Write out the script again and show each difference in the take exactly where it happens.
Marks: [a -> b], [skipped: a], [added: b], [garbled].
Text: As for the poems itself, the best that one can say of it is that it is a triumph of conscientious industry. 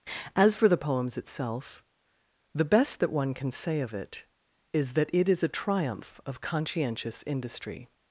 As for the poems itself, the best that one can say of it is that it is a triumph of conscientious industry.